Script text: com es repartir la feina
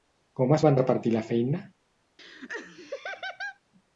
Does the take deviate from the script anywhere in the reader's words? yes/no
yes